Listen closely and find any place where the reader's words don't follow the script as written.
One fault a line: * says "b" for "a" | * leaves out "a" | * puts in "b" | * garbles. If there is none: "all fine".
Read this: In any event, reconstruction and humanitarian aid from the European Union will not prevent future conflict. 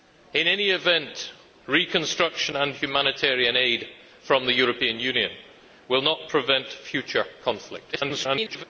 * garbles